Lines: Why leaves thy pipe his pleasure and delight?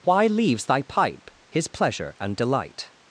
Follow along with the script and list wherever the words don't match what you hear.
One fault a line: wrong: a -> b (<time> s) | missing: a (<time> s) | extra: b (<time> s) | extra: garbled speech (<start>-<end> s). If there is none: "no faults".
no faults